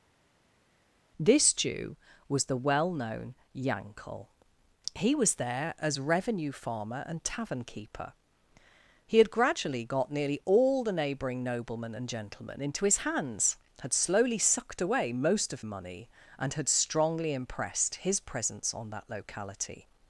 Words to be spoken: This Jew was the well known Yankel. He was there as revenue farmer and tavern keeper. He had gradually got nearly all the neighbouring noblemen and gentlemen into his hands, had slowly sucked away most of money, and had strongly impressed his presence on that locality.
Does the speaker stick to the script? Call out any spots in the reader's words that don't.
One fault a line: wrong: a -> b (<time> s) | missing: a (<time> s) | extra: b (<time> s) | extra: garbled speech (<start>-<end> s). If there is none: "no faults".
no faults